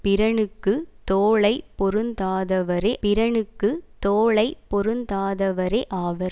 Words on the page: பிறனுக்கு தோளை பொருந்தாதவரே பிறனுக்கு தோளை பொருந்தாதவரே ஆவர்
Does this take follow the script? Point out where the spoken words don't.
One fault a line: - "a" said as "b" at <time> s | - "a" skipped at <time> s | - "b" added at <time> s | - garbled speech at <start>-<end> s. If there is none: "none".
none